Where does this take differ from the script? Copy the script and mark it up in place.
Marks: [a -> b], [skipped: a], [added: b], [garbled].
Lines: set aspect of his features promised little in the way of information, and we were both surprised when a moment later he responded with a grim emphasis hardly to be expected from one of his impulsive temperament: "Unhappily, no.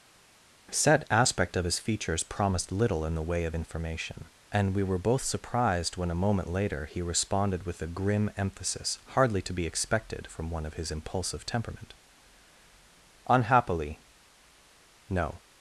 set aspect of his features promised little in the way of information, and we were both surprised when a moment later he responded with a grim emphasis hardly to be expected from one of his impulsive temperament: "Unhappily, no.